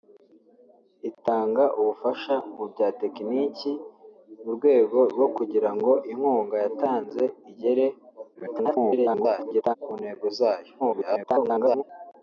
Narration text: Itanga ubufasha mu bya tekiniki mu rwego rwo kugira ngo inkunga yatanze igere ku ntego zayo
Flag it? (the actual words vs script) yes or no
yes